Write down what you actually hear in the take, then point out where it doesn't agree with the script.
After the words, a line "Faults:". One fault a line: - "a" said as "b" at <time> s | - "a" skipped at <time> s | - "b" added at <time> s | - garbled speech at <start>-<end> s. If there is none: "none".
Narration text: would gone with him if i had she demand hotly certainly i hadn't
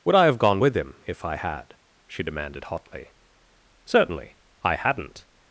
would i have gone with him if i had she demanded hotly certainly i hadn't
Faults:
- "i have" added at 0.1 s
- "demand" said as "demanded" at 2.2 s